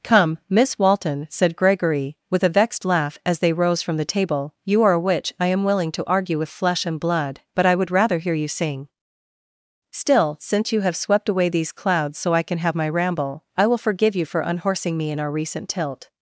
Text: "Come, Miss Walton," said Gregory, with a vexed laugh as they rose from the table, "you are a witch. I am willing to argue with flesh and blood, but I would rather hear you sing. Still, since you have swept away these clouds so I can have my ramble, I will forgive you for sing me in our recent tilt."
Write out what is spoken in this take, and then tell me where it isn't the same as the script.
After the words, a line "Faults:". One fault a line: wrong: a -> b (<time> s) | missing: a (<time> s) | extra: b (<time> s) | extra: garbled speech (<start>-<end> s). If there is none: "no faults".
"Come, Miss Walton," said Gregory, with a vexed laugh as they rose from the table, "you are a witch. I am willing to argue with flesh and blood, but I would rather hear you sing. Still, since you have swept away these clouds so I can have my ramble, I will forgive you for unhorsing me in our recent tilt."
Faults:
wrong: sing -> unhorsing (14.4 s)